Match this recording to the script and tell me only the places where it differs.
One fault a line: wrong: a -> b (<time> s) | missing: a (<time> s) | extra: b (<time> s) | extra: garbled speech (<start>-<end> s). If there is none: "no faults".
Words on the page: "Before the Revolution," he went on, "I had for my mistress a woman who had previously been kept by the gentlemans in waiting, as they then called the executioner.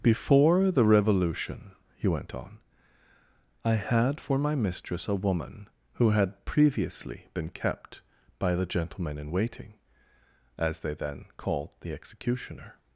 wrong: gentlemans -> gentleman (8.7 s)